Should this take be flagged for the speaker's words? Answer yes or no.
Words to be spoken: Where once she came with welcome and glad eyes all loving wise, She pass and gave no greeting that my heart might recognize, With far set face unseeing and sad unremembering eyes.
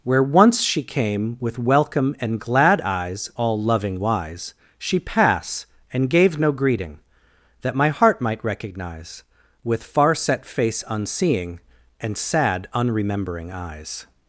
no